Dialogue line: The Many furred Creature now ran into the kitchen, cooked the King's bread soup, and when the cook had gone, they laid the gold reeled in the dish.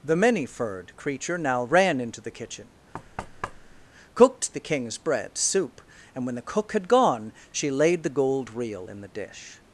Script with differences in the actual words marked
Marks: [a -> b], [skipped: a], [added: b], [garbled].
The Many furred Creature now ran into the kitchen, cooked the King's bread soup, and when the cook had gone, [they -> she] laid the gold [reeled -> reel] in the dish.